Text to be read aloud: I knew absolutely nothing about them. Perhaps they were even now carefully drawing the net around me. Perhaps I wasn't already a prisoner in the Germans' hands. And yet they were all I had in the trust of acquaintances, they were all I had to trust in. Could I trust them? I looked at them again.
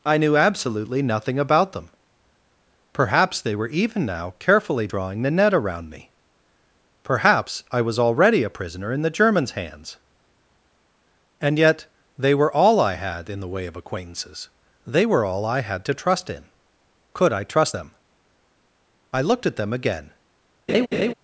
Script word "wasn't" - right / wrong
wrong